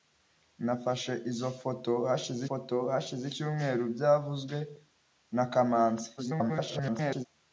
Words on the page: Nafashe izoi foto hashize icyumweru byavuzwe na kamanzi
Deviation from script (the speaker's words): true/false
true